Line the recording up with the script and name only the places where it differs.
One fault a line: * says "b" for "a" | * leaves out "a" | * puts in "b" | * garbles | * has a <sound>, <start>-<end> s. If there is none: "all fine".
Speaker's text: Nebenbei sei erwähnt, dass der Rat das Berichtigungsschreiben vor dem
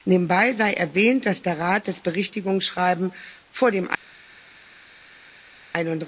all fine